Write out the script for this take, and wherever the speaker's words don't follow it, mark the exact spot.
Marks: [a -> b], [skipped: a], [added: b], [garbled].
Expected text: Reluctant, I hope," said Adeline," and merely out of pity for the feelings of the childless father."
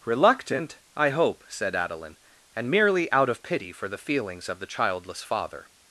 Reluctant, I hope," said Adeline," and merely out of pity for the feelings of the childless father."